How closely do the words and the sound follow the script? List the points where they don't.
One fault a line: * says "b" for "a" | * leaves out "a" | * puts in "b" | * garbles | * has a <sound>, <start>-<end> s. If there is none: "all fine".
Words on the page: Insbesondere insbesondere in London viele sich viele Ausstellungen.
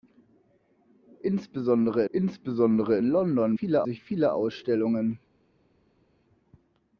all fine